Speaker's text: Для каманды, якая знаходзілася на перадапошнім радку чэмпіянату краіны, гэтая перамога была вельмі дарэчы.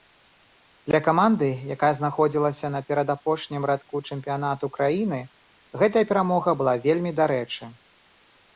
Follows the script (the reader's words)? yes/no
yes